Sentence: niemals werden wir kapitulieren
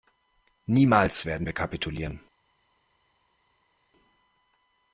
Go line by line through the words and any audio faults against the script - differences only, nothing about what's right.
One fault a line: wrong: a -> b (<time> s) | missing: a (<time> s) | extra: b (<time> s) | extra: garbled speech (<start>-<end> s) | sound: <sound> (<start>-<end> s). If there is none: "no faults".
no faults